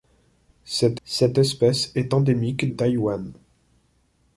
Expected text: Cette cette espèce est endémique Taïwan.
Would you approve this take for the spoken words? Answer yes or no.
yes